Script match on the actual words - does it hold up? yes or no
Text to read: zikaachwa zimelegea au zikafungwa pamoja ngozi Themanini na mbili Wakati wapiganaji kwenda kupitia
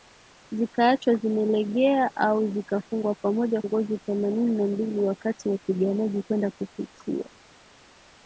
yes